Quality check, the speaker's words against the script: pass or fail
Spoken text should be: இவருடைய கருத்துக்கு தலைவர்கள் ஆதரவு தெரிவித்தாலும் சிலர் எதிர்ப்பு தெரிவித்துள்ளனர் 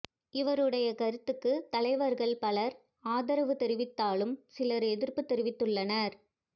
fail